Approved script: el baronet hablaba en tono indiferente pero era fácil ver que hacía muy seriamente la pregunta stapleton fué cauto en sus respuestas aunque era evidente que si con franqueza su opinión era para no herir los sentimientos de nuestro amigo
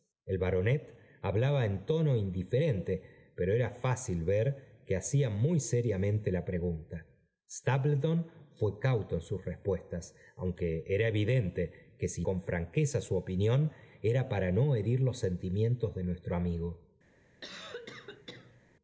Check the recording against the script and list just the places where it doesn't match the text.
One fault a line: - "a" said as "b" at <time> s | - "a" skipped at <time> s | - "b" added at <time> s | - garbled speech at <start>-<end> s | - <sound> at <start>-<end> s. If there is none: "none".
- cough at 17.4-18.6 s